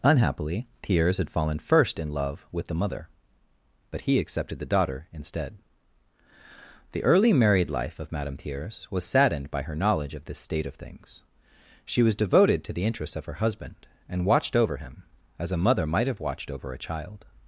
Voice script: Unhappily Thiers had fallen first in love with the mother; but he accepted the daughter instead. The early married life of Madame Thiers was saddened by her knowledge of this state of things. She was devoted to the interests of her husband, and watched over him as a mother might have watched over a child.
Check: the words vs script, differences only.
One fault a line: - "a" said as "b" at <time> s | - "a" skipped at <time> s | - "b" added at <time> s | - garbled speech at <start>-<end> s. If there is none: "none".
none